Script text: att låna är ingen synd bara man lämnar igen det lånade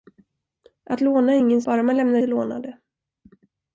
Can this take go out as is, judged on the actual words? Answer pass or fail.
fail